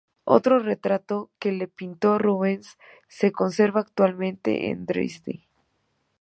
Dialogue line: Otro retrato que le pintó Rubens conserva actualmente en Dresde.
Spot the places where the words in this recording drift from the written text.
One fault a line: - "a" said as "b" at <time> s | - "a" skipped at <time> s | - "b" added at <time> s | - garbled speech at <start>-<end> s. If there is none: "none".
- "se" added at 3.1 s